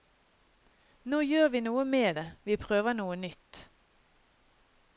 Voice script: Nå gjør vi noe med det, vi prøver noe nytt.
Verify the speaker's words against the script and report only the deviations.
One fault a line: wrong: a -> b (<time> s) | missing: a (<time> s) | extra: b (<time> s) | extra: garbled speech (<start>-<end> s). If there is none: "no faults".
no faults